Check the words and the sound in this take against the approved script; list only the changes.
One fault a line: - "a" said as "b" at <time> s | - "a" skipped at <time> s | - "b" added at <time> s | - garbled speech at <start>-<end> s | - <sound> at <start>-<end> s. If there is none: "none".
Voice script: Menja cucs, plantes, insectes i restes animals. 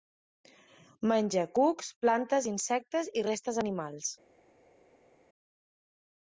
none